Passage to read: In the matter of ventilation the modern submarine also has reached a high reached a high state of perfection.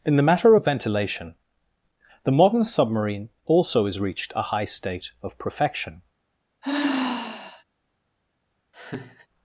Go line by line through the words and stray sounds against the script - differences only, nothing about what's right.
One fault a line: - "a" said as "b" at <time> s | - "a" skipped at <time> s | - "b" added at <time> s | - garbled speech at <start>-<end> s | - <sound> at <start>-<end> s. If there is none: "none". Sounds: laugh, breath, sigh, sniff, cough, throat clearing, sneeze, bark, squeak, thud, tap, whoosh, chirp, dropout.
- "reached a high" skipped at 4.6 s
- sigh at 6.6-7.6 s
- laugh at 8.7-9.3 s